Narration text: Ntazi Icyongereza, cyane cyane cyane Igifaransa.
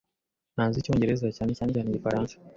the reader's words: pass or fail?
pass